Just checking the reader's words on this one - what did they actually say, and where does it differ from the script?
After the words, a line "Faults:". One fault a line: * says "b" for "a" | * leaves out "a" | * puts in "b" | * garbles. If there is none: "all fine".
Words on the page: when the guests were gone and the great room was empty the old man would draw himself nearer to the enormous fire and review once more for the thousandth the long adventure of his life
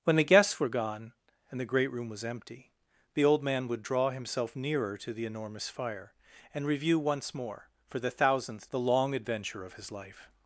when the guests were gone and the great room was empty the old man would draw himself nearer to the enormous fire and review once more for the thousandth the long adventure of his life
Faults:
all fine